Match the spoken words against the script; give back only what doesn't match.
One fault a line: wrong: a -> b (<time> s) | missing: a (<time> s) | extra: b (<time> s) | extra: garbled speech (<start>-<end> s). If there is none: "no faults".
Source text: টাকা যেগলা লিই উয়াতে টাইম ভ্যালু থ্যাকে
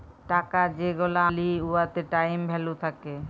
no faults